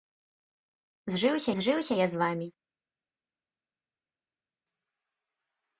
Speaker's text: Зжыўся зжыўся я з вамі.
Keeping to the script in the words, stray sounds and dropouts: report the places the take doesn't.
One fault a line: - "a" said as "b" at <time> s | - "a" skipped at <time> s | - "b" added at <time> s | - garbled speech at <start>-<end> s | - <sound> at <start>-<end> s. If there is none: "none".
none